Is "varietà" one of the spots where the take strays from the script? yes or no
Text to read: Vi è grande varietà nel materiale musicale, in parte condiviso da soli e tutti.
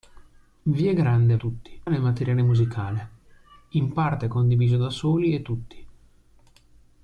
yes